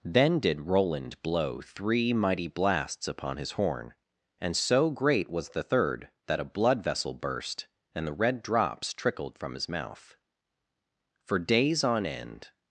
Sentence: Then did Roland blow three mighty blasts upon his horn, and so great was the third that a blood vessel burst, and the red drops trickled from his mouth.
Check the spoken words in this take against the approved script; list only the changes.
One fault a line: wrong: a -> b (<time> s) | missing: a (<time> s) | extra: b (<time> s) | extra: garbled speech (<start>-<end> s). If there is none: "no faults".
extra: For days on end (11.2 s)